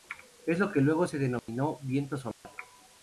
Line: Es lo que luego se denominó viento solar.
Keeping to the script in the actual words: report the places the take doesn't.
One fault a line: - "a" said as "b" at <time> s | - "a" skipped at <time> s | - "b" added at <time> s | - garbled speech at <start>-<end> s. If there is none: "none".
none